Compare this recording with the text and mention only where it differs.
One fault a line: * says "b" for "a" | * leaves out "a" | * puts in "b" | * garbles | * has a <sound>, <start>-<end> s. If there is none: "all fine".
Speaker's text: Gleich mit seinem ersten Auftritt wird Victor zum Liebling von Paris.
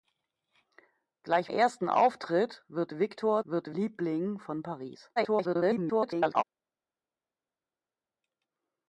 * leaves out "mit seinem"
* says "wird" for "zum"
* garbles